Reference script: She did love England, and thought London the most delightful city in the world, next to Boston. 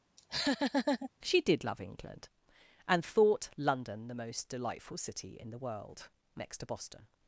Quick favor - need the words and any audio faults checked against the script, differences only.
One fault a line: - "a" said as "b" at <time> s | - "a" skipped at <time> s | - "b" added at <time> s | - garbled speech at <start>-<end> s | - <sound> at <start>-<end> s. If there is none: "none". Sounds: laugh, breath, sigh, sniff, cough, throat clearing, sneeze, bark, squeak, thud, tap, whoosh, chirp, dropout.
- laugh at 0.2-1.1 s